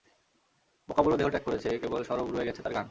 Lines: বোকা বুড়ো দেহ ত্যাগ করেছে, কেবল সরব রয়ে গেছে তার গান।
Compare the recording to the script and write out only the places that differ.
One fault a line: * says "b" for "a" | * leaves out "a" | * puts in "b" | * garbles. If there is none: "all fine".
all fine